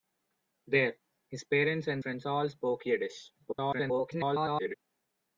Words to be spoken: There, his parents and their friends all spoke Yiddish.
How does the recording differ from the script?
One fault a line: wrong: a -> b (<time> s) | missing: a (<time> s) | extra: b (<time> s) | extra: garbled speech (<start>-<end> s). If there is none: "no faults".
missing: their (2.0 s)
extra: garbled speech (3.4-4.7 s)